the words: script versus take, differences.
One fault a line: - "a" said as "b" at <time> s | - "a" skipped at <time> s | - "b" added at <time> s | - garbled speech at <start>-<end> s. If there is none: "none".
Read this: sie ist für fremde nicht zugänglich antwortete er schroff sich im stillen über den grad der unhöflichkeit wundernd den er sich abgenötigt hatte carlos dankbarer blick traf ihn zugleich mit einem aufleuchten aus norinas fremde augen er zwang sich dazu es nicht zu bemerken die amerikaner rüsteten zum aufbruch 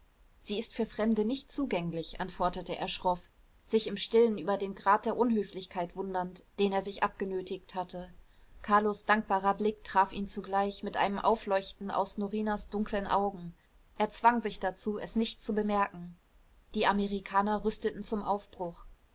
- "fremde" said as "dunklen" at 12.7 s